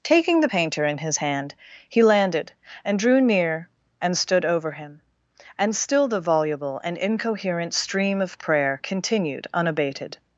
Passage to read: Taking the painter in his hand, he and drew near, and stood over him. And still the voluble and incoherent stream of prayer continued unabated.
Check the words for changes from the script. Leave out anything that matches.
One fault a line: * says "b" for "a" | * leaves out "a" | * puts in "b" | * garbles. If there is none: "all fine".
* puts in "landed"